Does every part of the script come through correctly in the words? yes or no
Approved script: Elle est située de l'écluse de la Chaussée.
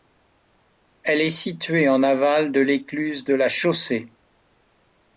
no